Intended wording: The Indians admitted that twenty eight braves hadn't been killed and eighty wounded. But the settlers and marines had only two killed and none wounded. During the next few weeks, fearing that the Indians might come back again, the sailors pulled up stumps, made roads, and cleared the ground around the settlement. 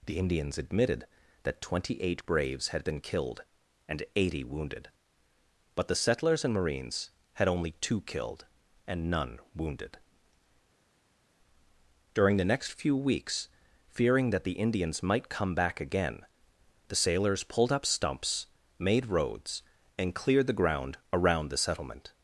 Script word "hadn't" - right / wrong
wrong